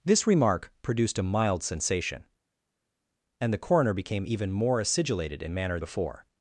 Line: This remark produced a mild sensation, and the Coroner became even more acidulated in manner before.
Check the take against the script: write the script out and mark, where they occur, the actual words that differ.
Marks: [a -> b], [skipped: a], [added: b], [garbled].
This remark produced a mild sensation, and the Coroner became even more acidulated in manner before.